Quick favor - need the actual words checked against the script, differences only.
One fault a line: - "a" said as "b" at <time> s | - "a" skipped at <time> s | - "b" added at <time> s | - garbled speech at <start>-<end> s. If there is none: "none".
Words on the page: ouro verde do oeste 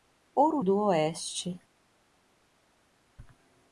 - "verde" skipped at 0.6 s